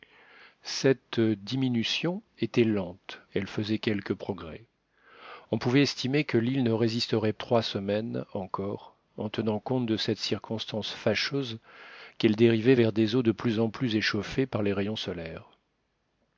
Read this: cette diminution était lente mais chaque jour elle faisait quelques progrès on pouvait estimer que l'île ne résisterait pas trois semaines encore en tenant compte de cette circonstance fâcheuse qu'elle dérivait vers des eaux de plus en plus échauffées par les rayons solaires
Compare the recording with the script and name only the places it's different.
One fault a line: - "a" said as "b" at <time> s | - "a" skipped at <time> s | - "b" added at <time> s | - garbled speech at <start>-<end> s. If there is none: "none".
- "mais chaque jour" skipped at 3.2 s
- "pas" skipped at 7.3 s